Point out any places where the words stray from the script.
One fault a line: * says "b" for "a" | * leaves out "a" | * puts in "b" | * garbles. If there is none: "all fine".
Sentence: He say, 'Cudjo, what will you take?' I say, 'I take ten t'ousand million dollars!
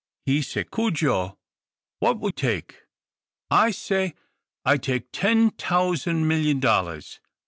* leaves out "you"